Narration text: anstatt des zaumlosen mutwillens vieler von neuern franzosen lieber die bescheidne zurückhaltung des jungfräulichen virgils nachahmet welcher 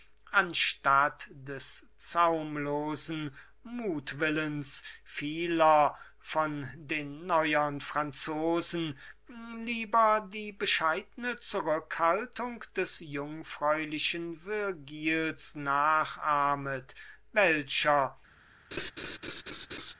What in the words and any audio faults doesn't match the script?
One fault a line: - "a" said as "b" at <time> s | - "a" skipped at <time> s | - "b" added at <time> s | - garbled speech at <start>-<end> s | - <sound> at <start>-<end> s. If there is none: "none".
- "den" added at 6.8 s
- laugh at 18.7-19.9 s